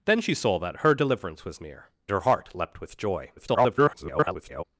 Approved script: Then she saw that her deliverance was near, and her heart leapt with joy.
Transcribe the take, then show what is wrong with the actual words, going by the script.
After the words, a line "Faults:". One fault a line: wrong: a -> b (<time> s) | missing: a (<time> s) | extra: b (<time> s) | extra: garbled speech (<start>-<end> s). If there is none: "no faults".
Then she saw that her deliverance was near, her heart leapt with joy. [garbled]
Faults:
missing: and (1.9 s)
extra: garbled speech (3.4-4.6 s)